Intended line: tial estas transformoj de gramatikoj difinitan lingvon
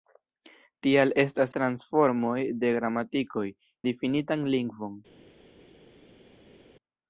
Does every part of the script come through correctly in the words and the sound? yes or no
yes